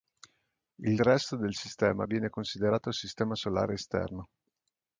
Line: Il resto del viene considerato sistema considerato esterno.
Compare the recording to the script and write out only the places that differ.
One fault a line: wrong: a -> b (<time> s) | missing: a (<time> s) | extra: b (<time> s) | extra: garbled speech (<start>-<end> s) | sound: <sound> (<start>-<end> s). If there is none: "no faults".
extra: sistema (1.5 s)
wrong: considerato -> solare (3.3 s)